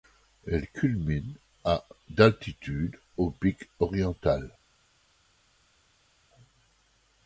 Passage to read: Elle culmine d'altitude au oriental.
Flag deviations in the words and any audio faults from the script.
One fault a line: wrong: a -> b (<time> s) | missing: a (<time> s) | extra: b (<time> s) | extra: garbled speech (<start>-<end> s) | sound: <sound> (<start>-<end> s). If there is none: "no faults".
extra: à (1.6 s)
extra: pic (3.3 s)